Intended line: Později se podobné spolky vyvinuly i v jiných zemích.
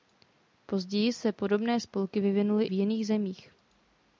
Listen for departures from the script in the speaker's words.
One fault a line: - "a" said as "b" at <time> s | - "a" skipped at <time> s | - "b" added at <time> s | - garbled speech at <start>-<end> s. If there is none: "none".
- "i v" skipped at 2.7 s